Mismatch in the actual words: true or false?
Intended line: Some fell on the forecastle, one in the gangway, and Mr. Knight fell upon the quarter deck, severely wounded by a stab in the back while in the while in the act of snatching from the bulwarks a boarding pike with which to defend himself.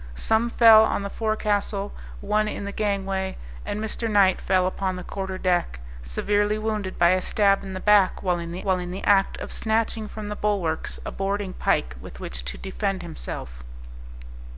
false